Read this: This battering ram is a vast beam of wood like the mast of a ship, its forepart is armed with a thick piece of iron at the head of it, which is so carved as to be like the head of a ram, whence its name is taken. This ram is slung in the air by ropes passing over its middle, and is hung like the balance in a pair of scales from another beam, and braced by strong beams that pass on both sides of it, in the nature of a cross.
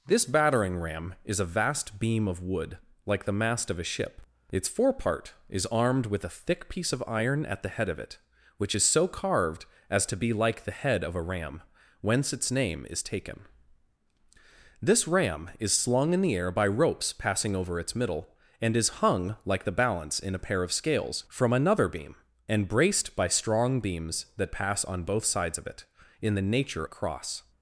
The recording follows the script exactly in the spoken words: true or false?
false